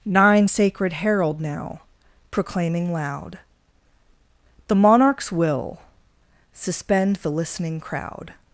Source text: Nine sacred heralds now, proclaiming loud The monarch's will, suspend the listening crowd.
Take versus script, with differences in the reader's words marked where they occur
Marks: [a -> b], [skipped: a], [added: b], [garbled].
Nine sacred [heralds -> herald] now, proclaiming loud The monarch's will, suspend the listening crowd.